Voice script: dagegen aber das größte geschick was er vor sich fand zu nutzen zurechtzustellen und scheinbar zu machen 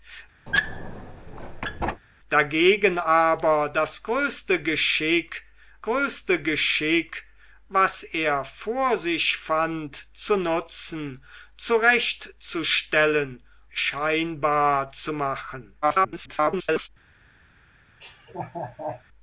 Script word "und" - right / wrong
wrong